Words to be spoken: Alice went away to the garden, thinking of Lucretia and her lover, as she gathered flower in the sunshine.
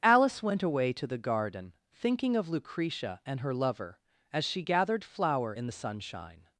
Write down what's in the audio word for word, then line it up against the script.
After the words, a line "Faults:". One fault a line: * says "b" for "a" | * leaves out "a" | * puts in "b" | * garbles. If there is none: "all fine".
Alice went away to the garden, thinking of Lucretia and her lover, as she gathered flower in the sunshine.
Faults:
all fine